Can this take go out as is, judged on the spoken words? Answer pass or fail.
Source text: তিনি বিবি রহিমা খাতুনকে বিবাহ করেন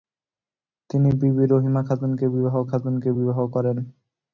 fail